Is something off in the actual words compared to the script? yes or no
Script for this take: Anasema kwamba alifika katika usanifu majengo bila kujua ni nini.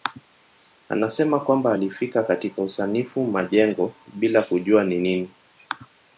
no